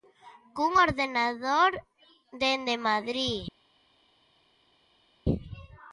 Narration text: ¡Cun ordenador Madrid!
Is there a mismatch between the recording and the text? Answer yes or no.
yes